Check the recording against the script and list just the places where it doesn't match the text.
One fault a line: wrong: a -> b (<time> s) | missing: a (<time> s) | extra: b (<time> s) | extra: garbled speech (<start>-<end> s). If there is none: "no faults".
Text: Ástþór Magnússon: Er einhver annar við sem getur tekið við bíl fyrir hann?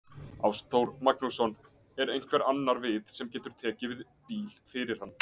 no faults